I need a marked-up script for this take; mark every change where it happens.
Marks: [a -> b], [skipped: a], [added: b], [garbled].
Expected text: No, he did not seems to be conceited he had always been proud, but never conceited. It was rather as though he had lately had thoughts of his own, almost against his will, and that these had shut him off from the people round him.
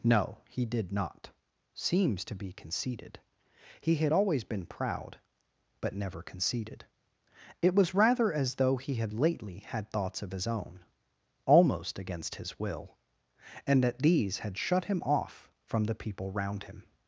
No, he did not seems to be conceited he had always been proud, but never conceited. It was rather as though he had lately had thoughts of his own, almost against his will, and that these had shut him off from the people round him.